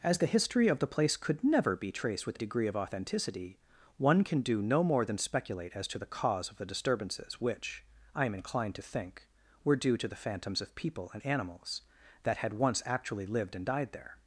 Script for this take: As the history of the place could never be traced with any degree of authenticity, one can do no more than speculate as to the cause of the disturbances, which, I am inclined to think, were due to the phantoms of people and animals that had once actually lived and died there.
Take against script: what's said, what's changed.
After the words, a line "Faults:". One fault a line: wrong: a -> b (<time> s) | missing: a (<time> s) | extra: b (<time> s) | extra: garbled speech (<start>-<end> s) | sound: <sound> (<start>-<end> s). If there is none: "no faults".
As the history of the place could never be traced with degree of authenticity, one can do no more than speculate as to the cause of the disturbances, which, I am inclined to think, were due to the phantoms of people and animals that had once actually lived and died there.
Faults:
missing: any (2.4 s)